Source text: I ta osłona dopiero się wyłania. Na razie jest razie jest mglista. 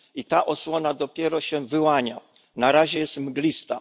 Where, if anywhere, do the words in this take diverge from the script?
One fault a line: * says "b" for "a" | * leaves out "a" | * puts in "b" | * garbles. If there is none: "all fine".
* leaves out "razie jest"